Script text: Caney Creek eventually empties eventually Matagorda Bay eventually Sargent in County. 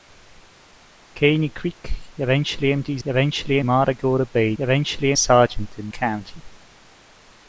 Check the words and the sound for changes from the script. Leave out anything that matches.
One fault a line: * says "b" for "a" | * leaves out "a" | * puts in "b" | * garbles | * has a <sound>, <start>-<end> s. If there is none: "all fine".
all fine